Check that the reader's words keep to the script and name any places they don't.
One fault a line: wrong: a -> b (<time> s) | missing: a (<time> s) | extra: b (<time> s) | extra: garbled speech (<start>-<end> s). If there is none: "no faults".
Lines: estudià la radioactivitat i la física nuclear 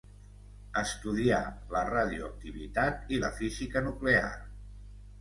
no faults